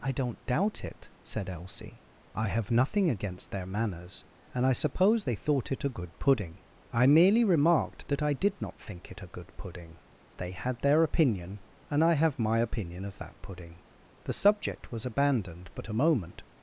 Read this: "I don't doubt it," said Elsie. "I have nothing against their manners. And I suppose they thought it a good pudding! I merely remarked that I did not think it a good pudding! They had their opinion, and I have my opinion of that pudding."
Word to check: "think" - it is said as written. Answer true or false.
true